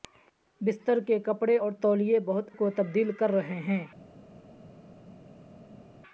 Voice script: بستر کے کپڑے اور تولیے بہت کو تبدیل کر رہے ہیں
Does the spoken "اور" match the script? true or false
true